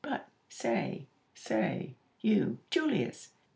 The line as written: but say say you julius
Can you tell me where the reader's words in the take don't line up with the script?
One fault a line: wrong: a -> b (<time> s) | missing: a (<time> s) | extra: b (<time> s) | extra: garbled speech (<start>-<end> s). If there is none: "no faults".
no faults